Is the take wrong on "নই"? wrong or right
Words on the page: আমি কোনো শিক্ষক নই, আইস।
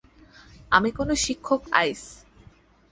wrong